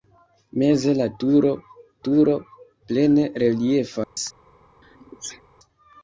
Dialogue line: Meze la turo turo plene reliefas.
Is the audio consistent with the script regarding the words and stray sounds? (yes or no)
no